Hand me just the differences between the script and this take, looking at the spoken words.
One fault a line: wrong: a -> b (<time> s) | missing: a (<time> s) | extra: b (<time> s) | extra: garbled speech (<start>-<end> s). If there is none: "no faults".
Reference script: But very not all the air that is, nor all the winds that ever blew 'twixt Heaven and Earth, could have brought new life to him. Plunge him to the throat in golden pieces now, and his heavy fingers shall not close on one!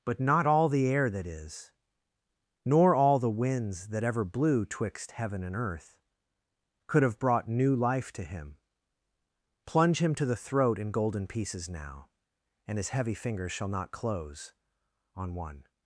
missing: very (0.2 s)